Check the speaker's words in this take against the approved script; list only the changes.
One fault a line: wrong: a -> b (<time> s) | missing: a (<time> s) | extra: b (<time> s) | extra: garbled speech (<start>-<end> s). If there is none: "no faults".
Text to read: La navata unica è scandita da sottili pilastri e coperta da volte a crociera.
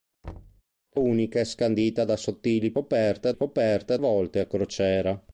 missing: navata (1.0 s)
wrong: pilastri -> coperta (2.7 s)
missing: da (4.0 s)